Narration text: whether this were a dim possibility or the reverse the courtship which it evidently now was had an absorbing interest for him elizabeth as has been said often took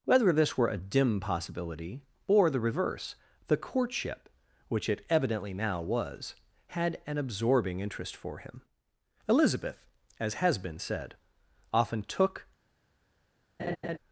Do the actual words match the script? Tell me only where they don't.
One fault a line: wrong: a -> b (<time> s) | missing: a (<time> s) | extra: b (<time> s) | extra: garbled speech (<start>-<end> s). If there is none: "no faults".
no faults